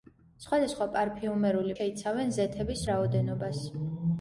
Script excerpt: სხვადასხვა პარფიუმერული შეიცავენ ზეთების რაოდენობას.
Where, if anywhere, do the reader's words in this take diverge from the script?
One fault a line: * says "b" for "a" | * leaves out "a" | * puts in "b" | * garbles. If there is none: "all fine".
all fine